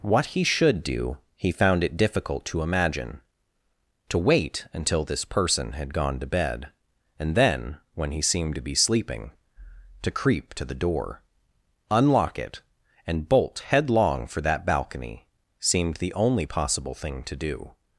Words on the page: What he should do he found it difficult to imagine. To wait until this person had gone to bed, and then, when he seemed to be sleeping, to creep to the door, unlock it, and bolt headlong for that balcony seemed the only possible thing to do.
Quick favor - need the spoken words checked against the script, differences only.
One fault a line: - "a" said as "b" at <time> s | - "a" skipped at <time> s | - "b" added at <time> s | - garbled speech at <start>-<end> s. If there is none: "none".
none